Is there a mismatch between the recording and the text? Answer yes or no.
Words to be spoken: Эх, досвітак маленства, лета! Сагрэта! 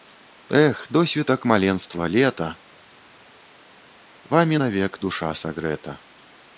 yes